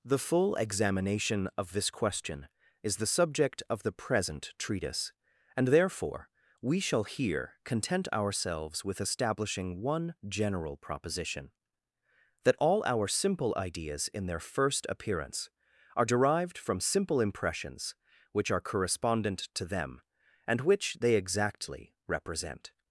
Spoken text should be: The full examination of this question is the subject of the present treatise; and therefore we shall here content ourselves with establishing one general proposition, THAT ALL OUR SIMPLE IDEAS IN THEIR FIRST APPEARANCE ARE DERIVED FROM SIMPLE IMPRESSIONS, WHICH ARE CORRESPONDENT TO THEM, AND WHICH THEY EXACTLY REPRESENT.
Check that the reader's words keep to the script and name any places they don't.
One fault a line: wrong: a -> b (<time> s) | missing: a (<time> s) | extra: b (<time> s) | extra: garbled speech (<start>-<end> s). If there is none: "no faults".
no faults